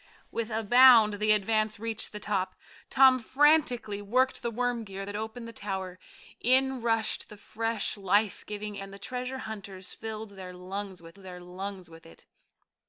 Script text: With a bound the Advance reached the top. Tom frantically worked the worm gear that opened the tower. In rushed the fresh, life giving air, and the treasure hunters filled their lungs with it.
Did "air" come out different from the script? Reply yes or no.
yes